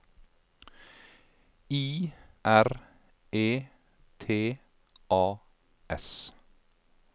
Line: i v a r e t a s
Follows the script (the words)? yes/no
no